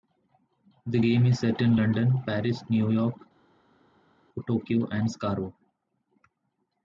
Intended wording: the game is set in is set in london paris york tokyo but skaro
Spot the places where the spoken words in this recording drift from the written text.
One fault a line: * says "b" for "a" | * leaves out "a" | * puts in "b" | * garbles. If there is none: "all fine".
* leaves out "is set in"
* puts in "new"
* says "and" for "but"